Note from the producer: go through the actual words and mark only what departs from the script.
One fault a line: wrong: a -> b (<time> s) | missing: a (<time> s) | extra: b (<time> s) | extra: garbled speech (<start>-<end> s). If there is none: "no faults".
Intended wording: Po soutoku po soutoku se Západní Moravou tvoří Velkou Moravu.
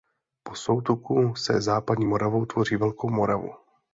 missing: po soutoku (1.4 s)